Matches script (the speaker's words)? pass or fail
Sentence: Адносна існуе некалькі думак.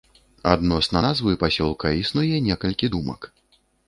fail